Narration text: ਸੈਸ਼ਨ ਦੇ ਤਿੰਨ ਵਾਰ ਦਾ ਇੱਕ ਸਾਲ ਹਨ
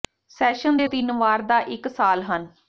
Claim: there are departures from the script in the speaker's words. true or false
false